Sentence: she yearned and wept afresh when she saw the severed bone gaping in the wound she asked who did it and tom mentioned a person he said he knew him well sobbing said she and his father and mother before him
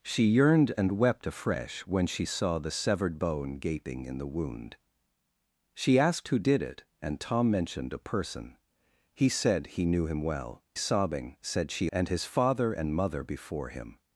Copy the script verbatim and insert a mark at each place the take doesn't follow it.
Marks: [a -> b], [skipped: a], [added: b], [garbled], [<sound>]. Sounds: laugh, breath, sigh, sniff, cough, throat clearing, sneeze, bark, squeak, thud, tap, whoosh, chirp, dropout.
she yearned and wept afresh when she saw the severed bone gaping in the wound she asked who did it and tom mentioned a person he said he knew him well sobbing said she and his father and mother before him